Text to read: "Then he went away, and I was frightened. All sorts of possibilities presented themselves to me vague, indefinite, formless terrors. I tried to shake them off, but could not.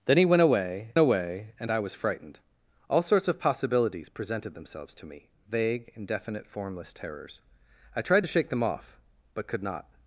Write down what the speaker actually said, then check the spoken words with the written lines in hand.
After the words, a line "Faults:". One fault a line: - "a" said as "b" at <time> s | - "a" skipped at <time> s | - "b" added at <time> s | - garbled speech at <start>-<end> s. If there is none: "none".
"Then he went away away, and I was frightened. All sorts of possibilities presented themselves to me vague, indefinite, formless terrors. I tried to shake them off, but could not.
Faults:
- "away" added at 1.0 s